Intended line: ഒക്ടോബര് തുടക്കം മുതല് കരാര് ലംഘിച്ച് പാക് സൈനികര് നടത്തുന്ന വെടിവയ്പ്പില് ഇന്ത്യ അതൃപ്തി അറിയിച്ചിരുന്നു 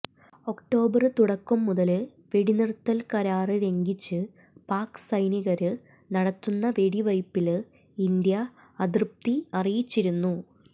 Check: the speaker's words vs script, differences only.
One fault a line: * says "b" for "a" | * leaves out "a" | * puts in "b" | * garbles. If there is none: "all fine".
* puts in "വെടിനിര്ത്തല്"